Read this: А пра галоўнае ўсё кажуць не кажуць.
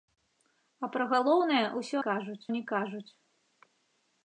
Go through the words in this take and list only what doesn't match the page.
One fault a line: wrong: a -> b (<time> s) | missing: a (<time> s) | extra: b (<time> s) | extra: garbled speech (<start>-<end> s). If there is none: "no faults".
no faults